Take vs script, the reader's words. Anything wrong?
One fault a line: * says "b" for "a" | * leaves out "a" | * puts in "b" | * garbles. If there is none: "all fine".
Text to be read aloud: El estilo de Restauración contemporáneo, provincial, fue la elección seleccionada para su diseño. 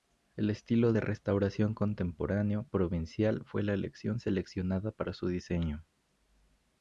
all fine